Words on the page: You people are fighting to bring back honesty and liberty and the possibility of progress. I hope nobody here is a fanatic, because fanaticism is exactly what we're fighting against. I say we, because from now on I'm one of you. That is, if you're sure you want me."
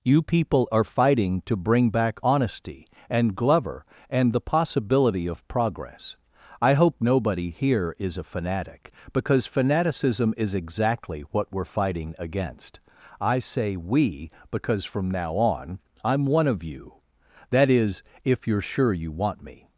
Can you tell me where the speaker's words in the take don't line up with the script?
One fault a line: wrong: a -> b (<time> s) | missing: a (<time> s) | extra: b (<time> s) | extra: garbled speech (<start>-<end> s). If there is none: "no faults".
wrong: liberty -> glover (3.3 s)